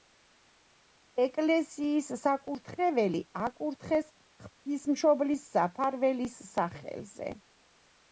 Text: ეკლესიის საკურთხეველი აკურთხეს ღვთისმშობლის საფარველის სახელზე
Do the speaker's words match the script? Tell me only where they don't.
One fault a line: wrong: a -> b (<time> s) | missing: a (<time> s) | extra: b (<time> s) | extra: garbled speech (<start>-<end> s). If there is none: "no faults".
no faults